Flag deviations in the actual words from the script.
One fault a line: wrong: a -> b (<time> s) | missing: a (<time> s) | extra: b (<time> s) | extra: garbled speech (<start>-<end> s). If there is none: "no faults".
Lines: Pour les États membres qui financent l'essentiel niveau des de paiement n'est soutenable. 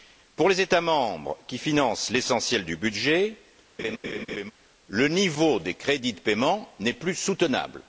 extra: du budget le (2.6 s)
extra: crédits (5.7 s)
extra: plus (6.9 s)